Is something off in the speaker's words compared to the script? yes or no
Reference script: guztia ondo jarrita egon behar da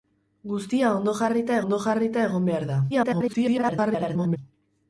yes